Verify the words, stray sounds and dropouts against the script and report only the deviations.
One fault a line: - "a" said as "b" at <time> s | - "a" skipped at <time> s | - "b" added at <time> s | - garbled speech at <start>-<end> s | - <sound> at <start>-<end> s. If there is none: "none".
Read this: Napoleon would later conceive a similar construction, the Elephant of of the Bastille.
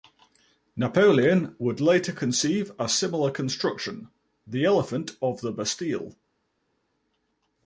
- "of" skipped at 5.4 s